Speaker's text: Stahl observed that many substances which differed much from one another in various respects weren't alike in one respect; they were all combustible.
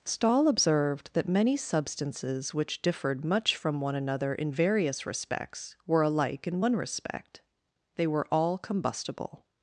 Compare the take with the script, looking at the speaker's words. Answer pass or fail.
fail